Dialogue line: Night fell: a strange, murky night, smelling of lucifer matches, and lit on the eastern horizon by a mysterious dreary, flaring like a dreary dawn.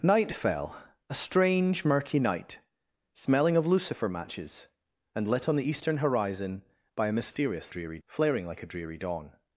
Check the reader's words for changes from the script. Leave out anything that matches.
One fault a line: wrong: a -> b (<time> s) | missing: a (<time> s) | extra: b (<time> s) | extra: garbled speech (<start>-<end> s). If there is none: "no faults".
no faults